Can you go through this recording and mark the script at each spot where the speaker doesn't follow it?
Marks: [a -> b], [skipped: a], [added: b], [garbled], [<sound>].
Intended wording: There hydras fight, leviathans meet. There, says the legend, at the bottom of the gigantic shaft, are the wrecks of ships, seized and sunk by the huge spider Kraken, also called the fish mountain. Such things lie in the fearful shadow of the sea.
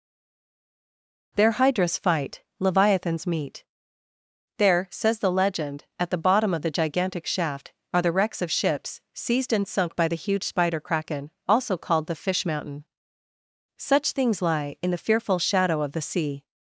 There hydras fight, leviathans meet. There, says the legend, at the bottom of the gigantic shaft, are the wrecks of ships, seized and sunk by the huge spider Kraken, also called the fish mountain. Such things lie in the fearful shadow of the sea.